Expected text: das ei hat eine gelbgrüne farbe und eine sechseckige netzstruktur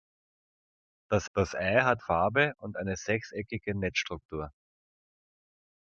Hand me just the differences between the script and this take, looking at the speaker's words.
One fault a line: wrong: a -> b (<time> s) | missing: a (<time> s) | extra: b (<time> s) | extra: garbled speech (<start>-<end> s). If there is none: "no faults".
extra: das (1.4 s)
missing: eine gelbgrüne (2.0 s)